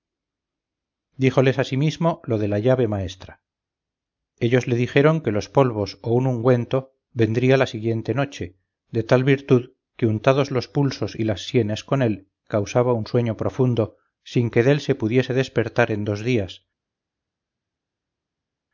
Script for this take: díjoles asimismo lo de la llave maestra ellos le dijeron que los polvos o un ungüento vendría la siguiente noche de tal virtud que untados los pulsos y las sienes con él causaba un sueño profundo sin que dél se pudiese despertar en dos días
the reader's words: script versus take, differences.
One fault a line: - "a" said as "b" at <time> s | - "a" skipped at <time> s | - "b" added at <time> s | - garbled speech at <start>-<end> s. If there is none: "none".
none